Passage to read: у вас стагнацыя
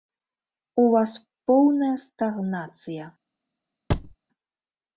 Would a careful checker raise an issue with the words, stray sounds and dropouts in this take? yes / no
yes